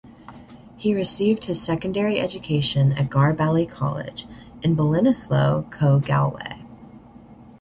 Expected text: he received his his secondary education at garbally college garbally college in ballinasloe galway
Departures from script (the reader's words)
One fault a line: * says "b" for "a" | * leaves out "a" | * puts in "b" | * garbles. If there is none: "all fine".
* leaves out "his"
* leaves out "garbally college"
* puts in "co"